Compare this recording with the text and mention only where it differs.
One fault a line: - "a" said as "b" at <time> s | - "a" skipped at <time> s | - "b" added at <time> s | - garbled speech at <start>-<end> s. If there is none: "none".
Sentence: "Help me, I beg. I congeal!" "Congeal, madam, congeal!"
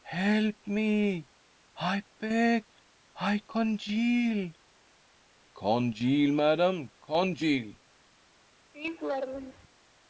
none